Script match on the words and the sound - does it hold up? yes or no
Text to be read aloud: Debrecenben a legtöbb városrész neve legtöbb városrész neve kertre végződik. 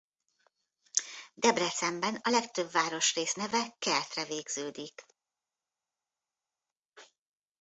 no